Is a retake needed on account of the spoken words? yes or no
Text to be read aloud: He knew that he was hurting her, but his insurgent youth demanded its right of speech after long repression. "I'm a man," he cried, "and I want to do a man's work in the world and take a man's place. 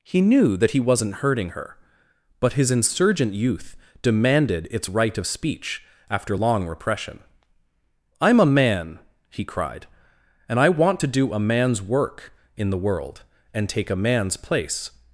yes